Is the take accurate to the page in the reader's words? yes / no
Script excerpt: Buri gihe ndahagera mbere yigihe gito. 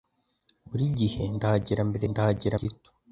no